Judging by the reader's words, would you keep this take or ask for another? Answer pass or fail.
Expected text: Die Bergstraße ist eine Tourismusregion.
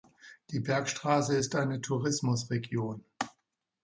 pass